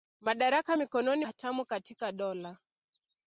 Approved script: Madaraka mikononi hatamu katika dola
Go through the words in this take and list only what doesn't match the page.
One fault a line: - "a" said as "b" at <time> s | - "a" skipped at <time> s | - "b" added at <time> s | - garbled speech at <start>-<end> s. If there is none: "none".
none